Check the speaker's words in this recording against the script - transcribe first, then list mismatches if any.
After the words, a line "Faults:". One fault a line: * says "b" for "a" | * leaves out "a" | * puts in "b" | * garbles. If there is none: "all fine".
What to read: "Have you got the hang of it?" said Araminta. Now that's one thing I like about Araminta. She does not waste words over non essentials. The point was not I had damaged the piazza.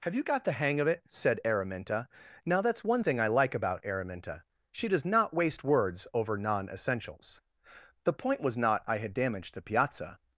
"Have you got the hang of it?" said Araminta. Now that's one thing I like about Araminta. She does not waste words over non essentials. The point was not I had damaged the piazza.
Faults:
all fine